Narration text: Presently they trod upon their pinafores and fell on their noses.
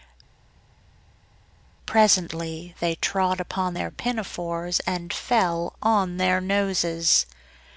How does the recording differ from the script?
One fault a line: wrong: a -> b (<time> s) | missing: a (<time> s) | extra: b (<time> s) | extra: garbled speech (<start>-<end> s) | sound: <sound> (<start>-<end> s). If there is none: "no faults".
no faults